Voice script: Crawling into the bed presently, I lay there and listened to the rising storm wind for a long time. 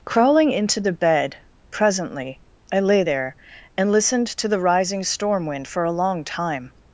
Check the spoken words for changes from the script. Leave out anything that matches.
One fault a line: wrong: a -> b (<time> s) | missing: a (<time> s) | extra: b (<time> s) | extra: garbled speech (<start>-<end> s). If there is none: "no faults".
no faults